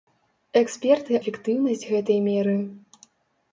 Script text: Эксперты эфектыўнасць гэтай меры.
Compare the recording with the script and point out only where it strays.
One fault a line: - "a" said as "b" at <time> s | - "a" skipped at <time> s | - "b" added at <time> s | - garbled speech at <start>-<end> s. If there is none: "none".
none